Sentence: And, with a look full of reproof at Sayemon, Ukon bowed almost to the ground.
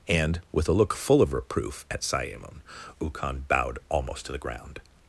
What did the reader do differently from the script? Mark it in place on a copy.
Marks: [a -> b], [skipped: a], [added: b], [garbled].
And, with a look full of reproof at Sayemon, Ukon bowed almost to the ground.